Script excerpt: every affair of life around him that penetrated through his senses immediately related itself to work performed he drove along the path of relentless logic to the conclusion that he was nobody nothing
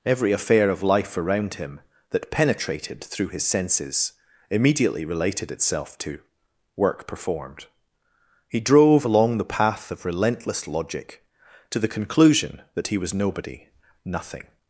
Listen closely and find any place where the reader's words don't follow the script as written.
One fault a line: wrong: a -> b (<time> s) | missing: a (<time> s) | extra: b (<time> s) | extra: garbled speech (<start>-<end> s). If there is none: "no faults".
no faults